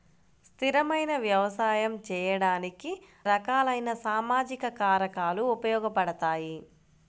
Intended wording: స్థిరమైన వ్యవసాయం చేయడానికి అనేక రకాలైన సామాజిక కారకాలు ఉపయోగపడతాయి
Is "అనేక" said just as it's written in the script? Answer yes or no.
no